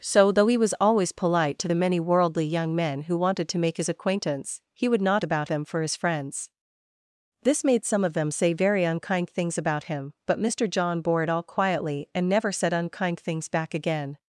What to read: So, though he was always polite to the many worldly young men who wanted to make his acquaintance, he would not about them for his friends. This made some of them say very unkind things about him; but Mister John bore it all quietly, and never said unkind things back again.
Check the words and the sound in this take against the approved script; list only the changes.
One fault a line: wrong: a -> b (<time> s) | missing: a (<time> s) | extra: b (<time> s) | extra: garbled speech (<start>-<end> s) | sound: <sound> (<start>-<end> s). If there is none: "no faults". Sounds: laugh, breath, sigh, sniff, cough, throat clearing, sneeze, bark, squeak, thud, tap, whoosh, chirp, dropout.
no faults